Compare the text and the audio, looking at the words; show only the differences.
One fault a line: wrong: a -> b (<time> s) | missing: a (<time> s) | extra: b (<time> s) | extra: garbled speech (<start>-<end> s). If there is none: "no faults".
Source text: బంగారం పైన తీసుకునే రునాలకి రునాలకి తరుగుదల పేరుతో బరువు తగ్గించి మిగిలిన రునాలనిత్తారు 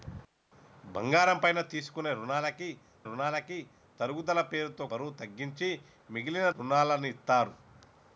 no faults